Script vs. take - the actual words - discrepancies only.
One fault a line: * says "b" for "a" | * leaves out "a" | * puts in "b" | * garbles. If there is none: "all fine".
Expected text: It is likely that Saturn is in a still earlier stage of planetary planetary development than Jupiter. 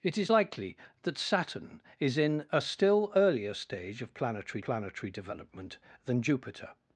all fine